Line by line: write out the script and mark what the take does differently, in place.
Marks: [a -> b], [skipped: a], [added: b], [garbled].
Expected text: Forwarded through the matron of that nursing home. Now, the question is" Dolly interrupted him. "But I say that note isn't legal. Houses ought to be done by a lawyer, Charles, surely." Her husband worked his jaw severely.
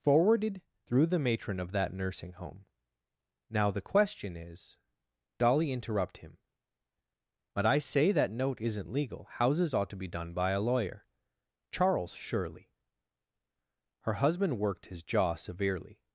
Forwarded through the matron of that nursing home. Now, the question is" Dolly [interrupted -> interrupt] him. "But I say that note isn't legal. Houses ought to be done by a lawyer, Charles, surely." Her husband worked his jaw severely.